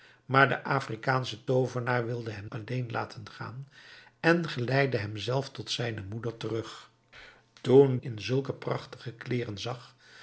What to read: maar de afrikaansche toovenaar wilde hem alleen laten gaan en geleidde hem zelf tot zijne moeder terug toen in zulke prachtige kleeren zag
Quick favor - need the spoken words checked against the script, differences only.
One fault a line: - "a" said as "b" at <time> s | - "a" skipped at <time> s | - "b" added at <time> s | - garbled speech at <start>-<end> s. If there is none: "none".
none